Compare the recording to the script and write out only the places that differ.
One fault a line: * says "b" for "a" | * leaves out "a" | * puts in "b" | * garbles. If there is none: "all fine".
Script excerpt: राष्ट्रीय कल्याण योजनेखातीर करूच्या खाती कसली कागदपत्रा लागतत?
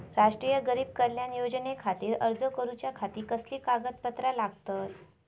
* puts in "गरीब"
* puts in "अर्ज"